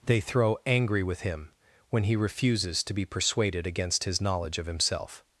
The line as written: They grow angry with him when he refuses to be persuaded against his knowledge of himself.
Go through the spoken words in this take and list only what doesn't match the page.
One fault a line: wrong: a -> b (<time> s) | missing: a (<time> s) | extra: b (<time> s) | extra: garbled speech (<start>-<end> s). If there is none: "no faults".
wrong: grow -> throw (0.2 s)